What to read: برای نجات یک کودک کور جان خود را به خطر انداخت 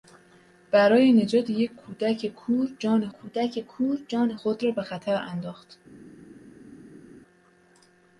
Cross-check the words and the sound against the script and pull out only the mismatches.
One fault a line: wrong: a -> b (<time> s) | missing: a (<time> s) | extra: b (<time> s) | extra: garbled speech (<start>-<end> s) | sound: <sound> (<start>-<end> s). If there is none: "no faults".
extra: کودک کور جان (3.1 s)